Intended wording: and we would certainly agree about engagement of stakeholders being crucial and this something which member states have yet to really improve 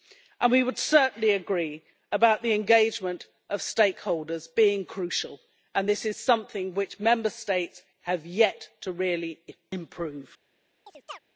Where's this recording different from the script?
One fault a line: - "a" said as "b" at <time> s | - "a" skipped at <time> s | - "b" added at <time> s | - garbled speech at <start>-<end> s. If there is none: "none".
- "the" added at 2.4 s
- "is" added at 6.1 s